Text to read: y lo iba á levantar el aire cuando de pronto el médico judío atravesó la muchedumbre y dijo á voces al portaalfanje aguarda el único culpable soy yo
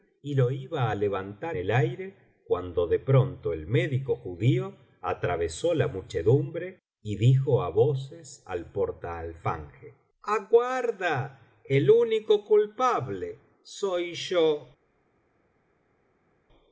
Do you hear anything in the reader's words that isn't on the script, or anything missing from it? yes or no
no